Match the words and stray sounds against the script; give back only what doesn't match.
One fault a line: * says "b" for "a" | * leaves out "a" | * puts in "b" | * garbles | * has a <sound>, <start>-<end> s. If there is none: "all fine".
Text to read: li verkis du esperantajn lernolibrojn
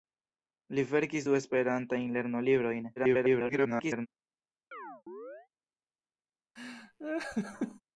* garbles
* has a chirp, 4.7-5.5 s
* has a laugh, 6.6-7.8 s